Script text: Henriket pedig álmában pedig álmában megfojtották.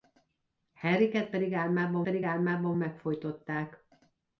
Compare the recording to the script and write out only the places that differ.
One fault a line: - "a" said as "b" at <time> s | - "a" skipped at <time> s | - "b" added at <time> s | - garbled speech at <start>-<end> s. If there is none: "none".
none